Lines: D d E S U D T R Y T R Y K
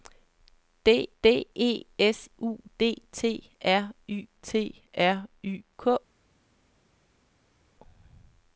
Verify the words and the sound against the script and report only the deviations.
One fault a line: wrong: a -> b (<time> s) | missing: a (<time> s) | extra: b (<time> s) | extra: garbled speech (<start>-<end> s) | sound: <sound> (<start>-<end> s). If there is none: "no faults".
no faults